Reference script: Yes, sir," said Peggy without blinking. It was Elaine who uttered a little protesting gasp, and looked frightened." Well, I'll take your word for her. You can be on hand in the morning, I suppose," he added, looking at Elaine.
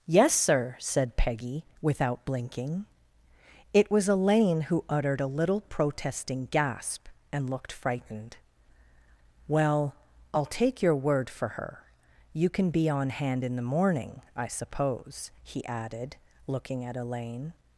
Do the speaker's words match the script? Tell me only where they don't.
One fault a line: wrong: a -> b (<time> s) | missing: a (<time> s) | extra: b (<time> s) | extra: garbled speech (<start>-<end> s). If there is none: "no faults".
no faults